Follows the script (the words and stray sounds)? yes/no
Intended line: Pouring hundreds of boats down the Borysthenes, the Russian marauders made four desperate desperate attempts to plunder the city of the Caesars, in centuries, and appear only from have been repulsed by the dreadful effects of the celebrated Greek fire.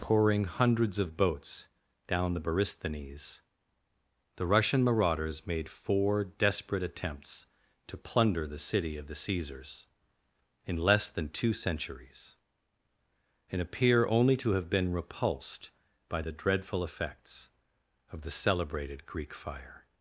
no